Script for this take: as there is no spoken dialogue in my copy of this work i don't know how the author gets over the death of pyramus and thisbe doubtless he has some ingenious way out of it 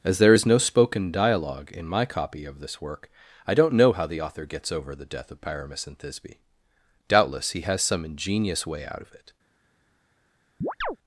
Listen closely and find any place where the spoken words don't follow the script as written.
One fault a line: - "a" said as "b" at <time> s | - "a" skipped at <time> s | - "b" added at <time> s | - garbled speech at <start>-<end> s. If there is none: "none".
none